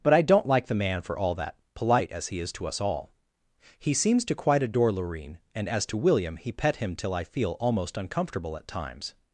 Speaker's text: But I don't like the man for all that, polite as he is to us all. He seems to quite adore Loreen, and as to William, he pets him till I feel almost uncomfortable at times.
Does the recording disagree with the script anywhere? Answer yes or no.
yes